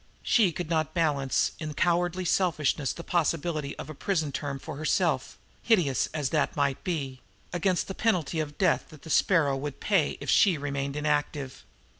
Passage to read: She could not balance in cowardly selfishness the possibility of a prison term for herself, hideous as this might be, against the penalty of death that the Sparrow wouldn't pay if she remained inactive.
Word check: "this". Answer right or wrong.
wrong